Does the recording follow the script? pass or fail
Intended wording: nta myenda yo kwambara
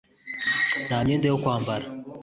pass